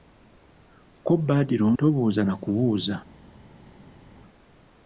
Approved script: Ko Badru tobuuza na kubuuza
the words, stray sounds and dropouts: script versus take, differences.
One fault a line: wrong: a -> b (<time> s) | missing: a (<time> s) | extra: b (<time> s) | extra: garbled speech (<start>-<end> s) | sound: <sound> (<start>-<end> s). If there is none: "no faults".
no faults